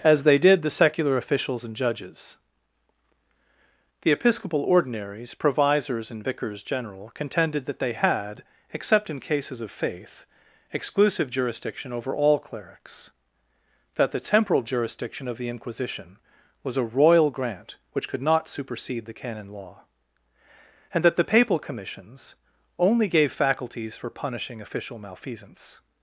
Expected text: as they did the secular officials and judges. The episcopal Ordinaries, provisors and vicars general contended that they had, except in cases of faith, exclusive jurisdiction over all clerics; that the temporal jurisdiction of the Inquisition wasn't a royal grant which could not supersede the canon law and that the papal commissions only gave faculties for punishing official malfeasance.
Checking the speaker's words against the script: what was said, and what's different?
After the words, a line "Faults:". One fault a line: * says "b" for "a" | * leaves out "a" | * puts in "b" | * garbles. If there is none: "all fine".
as they did the secular officials and judges. The episcopal Ordinaries, provisors and vicars general contended that they had, except in cases of faith, exclusive jurisdiction over all clerics; that the temporal jurisdiction of the Inquisition was a royal grant which could not supersede the canon law and that the papal commissions only gave faculties for punishing official malfeasance.
Faults:
* says "was" for "wasn't"